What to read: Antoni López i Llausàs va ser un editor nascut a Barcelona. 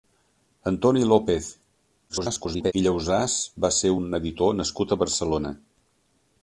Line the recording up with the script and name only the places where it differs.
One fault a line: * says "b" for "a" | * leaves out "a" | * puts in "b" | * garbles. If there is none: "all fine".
* garbles